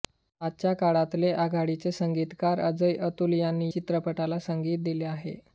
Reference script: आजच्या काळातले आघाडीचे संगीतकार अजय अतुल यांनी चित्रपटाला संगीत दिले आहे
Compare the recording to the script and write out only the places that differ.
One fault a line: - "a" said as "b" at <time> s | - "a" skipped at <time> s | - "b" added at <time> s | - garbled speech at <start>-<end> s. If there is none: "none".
none